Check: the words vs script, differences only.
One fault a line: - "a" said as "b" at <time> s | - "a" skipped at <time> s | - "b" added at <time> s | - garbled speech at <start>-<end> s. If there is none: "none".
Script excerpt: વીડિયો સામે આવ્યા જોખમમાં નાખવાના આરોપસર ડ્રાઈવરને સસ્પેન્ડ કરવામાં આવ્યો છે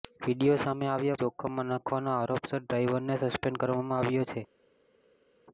none